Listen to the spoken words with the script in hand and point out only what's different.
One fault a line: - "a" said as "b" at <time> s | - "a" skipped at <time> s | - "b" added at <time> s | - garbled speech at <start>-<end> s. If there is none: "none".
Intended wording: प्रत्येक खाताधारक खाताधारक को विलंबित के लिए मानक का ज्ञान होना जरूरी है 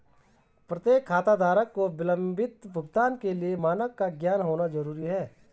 - "खाताधारक" skipped at 1.7 s
- "भुगतान" added at 2.7 s